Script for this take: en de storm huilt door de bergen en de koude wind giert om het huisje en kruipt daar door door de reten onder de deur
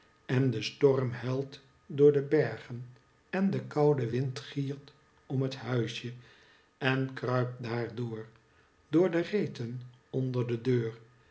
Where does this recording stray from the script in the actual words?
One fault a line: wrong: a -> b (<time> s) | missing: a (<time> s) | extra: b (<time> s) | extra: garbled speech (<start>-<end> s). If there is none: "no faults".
no faults